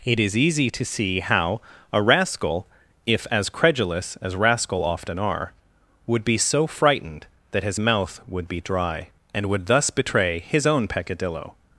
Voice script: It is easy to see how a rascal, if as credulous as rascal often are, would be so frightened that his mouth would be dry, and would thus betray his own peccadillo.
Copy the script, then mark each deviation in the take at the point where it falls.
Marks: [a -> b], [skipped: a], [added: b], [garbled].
It is easy to see how a rascal, if as credulous as rascal often are, would be so frightened that his mouth would be dry, and would thus betray his own peccadillo.